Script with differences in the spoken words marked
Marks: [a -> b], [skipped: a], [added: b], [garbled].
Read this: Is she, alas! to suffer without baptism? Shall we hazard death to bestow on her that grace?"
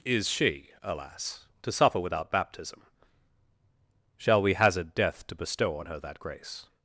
Is she, alas! to suffer without baptism? Shall we hazard death to bestow on her that grace?"